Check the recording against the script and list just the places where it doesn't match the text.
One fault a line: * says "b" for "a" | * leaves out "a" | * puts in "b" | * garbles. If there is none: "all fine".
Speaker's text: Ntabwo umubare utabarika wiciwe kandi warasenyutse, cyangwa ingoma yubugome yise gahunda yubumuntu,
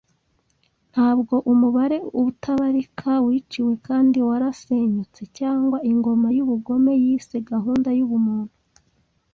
all fine